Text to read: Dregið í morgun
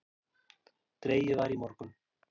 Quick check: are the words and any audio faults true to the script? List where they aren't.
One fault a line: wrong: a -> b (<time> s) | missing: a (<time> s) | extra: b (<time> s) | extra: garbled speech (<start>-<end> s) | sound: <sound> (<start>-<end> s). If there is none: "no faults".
extra: var (1.4 s)